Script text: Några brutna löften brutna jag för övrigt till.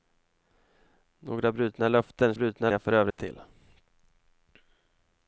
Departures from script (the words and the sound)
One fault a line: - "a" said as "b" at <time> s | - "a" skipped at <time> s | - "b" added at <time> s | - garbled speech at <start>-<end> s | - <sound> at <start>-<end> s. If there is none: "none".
- dropout at 3.1-3.2 s